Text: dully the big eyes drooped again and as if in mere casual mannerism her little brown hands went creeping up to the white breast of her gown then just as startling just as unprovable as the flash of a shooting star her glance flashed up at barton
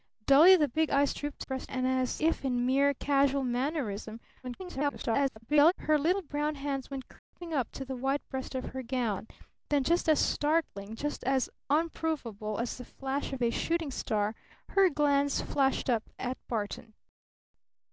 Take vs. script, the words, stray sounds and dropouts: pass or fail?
fail